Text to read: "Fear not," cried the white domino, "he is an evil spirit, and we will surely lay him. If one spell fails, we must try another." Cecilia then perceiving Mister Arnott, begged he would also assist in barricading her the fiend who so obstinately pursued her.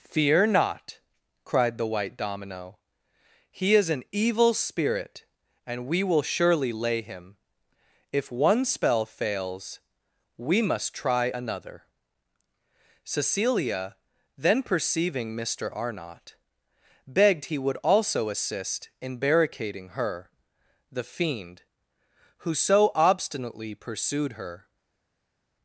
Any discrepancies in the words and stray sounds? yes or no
no